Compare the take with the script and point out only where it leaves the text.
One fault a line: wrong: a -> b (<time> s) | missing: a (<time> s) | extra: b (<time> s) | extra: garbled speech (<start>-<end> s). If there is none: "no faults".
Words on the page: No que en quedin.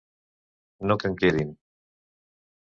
no faults